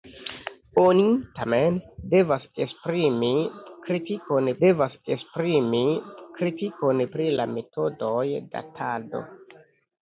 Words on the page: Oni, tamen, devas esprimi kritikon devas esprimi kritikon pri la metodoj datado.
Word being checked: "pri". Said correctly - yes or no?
yes